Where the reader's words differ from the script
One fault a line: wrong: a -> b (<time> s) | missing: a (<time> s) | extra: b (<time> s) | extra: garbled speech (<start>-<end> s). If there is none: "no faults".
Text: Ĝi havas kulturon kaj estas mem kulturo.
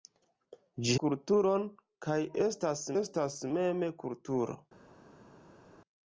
missing: havas (0.9 s)
extra: estas (3.0 s)